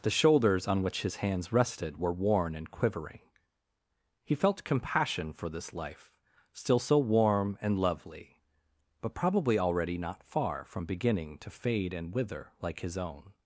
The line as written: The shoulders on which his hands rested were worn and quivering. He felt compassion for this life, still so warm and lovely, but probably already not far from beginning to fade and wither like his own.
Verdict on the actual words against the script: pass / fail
pass